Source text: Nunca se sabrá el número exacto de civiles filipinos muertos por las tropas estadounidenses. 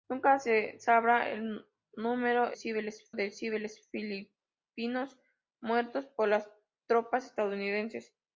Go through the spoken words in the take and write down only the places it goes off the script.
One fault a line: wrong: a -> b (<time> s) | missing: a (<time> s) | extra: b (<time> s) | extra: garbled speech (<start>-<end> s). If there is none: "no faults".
wrong: exacto -> civiles (2.5 s)